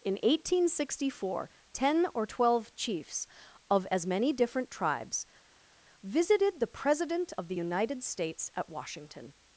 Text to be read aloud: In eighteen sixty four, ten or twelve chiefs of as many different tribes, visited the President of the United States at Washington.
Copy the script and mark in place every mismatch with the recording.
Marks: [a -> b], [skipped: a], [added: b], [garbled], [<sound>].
In eighteen sixty four, ten or twelve chiefs of as many different tribes, visited the President of the United States at Washington.